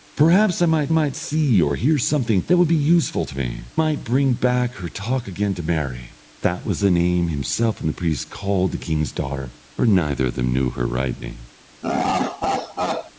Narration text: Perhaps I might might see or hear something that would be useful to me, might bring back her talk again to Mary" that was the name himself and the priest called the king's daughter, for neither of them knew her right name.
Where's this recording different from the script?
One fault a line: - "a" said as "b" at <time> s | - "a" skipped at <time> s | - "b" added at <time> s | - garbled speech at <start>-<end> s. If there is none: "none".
none